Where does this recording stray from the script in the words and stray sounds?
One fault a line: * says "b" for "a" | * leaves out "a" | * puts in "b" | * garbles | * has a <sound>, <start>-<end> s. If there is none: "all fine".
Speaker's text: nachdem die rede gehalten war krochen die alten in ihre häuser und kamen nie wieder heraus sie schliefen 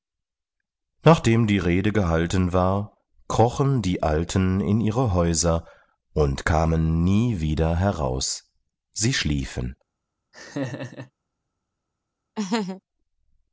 * has a laugh, 10.3-11.1 s
* has a laugh, 12.4-12.8 s